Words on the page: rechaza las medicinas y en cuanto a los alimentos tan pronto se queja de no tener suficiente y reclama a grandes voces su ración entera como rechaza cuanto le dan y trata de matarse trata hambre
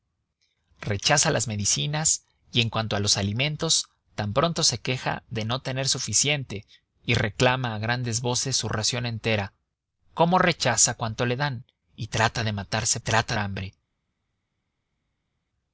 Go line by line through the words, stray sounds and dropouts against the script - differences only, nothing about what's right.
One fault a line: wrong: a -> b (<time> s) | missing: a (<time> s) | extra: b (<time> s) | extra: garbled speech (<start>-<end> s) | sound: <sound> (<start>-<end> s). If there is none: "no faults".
no faults